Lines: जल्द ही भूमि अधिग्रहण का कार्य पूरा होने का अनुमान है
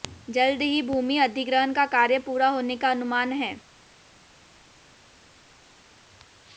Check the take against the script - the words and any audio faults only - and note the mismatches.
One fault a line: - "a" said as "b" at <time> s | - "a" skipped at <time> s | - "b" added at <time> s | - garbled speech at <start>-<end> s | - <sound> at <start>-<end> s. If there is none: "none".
none